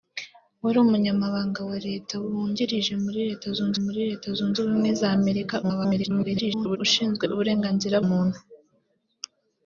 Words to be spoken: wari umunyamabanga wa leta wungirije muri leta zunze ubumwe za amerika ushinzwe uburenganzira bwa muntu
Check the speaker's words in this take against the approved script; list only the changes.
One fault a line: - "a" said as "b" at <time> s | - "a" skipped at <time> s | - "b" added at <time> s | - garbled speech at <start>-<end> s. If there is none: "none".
- "muri leta zunze" added at 3.8 s
- garbled speech at 5.6-6.8 s
- "bwa" skipped at 8.0 s